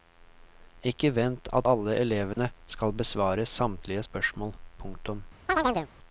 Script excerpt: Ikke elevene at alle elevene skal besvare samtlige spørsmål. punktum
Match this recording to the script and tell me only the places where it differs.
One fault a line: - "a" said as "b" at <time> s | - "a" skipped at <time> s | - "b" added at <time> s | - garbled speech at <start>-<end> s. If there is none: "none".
- "elevene" said as "vent" at 1.1 s